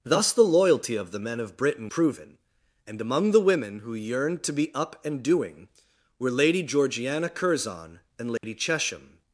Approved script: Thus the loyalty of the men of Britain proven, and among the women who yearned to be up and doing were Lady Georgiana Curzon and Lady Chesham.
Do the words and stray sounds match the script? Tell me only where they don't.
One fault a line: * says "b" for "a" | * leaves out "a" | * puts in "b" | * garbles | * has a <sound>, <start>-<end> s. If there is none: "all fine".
* has a dropout, 8.4-8.4 s